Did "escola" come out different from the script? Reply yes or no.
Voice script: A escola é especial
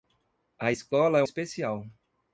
no